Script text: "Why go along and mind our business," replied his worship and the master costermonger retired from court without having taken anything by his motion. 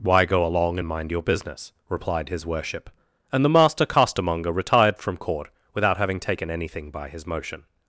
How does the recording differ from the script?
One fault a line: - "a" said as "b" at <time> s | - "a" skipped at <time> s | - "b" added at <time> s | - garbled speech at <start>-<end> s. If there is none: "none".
- "our" said as "your" at 1.1 s